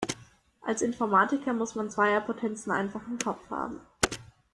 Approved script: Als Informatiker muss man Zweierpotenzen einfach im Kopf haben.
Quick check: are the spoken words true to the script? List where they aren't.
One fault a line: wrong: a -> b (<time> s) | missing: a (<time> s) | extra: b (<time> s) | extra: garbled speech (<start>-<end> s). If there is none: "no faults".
no faults